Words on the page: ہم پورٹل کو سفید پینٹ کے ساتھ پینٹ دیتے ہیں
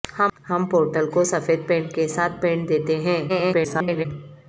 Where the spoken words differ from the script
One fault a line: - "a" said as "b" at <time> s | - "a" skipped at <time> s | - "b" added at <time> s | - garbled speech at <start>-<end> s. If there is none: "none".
- garbled speech at 3.3-4.1 s